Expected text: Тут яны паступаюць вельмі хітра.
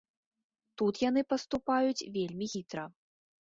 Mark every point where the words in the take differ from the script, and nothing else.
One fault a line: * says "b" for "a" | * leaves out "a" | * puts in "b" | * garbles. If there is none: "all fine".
all fine